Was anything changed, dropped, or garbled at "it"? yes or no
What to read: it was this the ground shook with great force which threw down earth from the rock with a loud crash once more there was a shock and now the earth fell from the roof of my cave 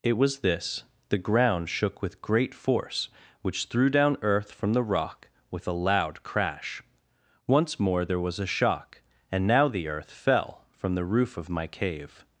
no